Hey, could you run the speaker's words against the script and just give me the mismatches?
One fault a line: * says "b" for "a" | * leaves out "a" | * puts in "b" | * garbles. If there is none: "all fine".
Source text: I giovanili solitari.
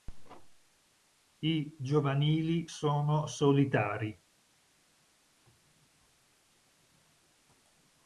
* puts in "sono"